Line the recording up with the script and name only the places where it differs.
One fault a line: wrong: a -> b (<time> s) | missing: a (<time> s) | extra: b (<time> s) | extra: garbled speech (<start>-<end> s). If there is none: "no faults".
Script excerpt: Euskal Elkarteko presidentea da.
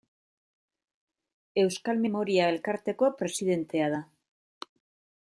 extra: Memoria (2.0 s)